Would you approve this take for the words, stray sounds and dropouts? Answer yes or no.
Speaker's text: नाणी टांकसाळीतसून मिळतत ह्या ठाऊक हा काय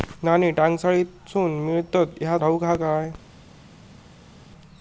yes